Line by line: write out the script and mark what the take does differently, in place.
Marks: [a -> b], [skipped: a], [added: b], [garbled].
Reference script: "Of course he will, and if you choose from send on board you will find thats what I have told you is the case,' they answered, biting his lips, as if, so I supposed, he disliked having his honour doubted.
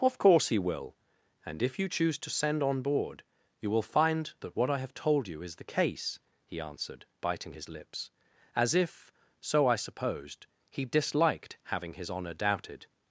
"Of course he will, and if you choose [from -> to] send on board you will find [thats -> that] what I have told you is the case,' [they -> he] answered, biting his lips, as if, so I supposed, he disliked having his honour doubted.